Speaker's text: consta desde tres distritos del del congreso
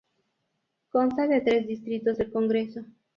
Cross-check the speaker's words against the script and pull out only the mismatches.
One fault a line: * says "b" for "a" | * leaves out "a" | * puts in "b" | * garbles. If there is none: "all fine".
* says "de" for "desde"
* leaves out "del"